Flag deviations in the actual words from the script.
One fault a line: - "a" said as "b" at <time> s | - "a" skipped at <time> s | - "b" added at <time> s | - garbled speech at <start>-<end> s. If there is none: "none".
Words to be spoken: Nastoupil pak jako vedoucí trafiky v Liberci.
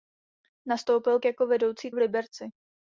- "pak" skipped at 1.2 s
- "trafiky" skipped at 1.9 s